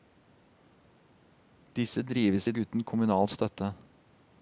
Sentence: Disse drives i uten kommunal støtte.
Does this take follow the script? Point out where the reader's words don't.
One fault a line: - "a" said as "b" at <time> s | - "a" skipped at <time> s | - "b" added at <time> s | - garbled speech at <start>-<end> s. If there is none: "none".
none